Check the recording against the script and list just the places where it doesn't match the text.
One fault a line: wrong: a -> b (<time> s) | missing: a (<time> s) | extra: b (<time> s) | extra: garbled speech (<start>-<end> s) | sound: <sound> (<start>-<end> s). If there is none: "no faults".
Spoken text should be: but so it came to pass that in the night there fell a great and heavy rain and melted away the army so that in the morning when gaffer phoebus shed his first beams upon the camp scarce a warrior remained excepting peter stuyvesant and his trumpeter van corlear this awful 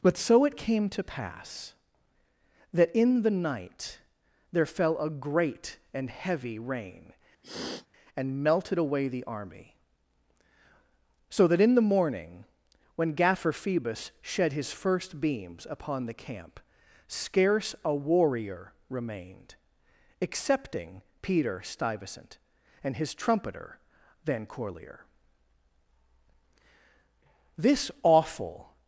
sound: sniff (7.4-7.9 s)